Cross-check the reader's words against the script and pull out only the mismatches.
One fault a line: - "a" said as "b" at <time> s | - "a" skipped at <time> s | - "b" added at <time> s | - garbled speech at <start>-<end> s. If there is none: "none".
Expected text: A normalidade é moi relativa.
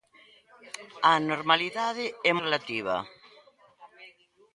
- "moi" skipped at 2.3 s